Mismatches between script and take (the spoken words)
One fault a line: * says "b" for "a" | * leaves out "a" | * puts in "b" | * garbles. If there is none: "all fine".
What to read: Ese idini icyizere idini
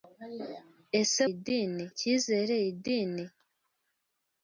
all fine